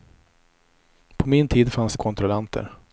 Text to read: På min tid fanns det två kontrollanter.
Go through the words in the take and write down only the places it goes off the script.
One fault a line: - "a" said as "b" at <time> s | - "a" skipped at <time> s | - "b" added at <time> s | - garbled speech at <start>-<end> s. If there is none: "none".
- "två" skipped at 2.0 s